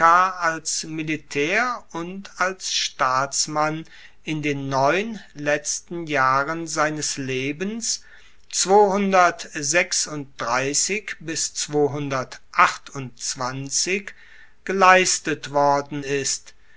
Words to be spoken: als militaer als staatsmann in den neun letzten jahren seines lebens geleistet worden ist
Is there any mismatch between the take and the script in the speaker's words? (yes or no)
yes